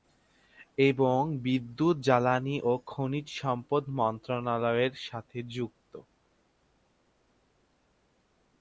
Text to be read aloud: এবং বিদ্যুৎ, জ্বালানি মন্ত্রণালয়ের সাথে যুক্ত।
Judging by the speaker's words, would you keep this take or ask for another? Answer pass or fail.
fail